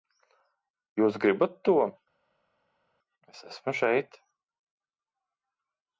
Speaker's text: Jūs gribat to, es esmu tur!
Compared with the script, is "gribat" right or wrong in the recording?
right